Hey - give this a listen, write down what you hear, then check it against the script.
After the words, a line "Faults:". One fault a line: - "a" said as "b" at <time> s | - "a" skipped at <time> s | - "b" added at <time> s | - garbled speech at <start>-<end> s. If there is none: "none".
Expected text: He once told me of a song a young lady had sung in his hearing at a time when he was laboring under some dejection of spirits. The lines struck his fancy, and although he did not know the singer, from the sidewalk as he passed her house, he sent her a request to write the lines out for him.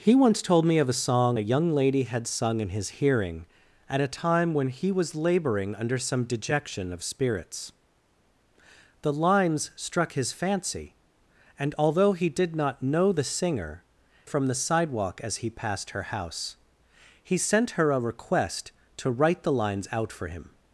He once told me of a song a young lady had sung in his hearing at a time when he was laboring under some dejection of spirits. The lines struck his fancy, and although he did not know the singer, from the sidewalk as he passed her house, he sent her a request to write the lines out for him.
Faults:
none